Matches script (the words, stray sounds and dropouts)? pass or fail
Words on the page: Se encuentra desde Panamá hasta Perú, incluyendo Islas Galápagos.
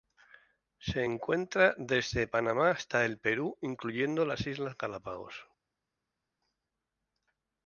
fail